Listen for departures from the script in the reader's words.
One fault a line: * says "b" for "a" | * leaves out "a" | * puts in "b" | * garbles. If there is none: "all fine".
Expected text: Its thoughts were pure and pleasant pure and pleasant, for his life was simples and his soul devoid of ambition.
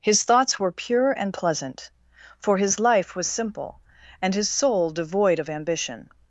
* says "His" for "Its"
* leaves out "pure and pleasant"
* says "simple" for "simples"